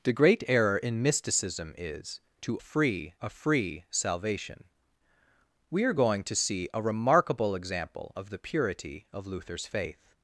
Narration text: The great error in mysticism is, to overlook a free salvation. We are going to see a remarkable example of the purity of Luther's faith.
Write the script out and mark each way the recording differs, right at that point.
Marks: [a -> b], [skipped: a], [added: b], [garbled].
The great error in mysticism is, to [overlook -> free] a free salvation. We are going to see a remarkable example of the purity of Luther's faith.